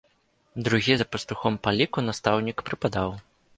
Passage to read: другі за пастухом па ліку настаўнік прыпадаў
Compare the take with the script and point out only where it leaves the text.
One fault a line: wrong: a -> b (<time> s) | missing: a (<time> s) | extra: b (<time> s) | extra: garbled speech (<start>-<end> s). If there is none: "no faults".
no faults